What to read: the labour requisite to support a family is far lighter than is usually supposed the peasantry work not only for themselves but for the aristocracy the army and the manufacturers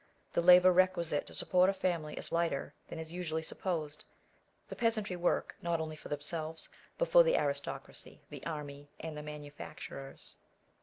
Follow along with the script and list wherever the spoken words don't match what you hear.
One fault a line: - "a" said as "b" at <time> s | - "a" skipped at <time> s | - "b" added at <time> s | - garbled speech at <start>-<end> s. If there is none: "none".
- "far" skipped at 2.3 s